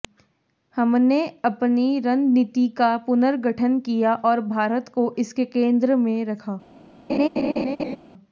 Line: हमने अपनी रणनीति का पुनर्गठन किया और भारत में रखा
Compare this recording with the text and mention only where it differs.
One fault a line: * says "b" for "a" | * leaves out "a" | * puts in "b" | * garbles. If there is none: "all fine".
* puts in "को इसके केंद्र"